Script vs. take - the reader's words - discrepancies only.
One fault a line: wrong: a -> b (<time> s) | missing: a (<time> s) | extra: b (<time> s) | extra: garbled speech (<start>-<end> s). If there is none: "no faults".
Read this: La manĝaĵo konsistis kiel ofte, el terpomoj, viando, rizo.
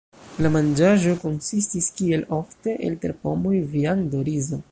no faults